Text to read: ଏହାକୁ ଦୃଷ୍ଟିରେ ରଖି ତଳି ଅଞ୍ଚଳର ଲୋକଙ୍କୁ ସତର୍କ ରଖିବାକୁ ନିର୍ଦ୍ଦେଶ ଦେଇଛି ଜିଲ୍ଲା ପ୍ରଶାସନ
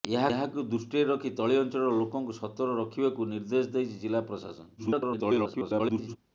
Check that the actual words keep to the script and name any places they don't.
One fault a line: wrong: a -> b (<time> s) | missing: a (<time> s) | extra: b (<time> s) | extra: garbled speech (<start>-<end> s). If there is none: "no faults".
extra: garbled speech (4.8-6.2 s)